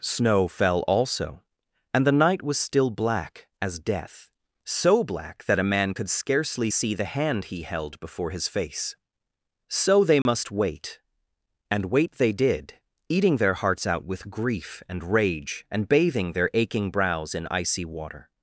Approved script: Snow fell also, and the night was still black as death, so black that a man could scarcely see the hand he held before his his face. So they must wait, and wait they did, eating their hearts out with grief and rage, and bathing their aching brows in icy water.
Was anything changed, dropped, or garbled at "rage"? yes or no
no